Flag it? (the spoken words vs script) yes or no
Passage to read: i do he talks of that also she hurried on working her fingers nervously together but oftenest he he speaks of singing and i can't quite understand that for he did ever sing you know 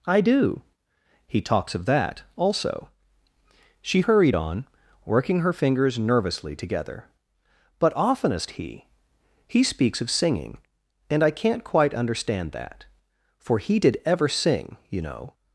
no